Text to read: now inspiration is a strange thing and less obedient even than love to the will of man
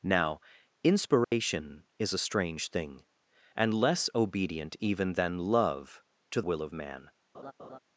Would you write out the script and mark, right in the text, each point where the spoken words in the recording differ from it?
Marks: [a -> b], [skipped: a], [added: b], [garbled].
now inspiration is a strange thing and less obedient even than love to [skipped: the] will of man